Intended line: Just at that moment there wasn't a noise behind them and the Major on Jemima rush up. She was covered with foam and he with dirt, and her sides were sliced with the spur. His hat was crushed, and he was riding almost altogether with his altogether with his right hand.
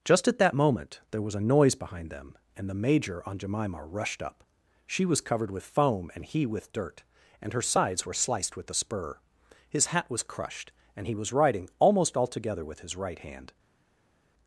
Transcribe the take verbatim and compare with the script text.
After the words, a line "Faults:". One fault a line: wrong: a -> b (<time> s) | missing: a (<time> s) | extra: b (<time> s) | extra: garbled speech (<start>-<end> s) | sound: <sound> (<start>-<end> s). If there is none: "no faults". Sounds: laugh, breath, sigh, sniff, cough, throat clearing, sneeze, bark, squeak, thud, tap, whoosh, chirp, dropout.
Just at that moment there was a noise behind them and the Major on Jemima rushed up. She was covered with foam and he with dirt, and her sides were sliced with the spur. His hat was crushed, and he was riding almost altogether with his right hand.
Faults:
wrong: wasn't -> was (1.2 s)
wrong: rush -> rushed (3.8 s)
missing: altogether with his (13.0 s)